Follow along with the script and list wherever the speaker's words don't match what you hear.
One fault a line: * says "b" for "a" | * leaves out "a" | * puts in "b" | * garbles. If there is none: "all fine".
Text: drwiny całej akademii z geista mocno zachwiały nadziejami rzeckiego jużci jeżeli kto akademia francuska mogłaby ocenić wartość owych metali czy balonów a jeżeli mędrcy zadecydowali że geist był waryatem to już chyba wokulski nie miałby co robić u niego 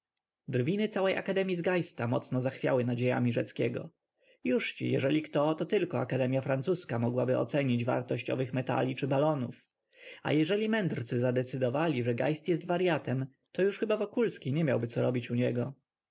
* puts in "to tylko"
* says "jest" for "był"